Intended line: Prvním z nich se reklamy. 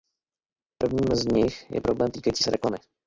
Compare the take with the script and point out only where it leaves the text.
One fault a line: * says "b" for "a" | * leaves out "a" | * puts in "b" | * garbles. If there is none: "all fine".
* puts in "je problém týkající"